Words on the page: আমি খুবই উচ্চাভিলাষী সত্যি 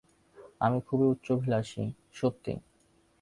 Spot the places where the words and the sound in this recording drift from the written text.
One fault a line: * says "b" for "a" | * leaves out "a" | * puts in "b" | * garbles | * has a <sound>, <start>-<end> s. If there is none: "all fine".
all fine